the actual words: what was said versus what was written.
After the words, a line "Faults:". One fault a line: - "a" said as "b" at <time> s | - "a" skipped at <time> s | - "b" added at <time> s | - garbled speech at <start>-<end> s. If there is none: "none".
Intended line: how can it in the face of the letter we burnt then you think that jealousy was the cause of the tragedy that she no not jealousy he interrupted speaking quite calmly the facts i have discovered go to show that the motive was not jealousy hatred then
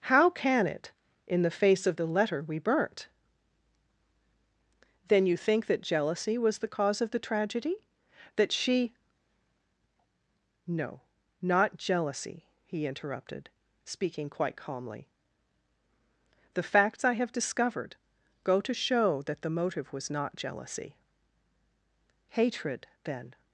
how can it in the face of the letter we burnt then you think that jealousy was the cause of the tragedy that she no not jealousy he interrupted speaking quite calmly the facts i have discovered go to show that the motive was not jealousy hatred then
Faults:
none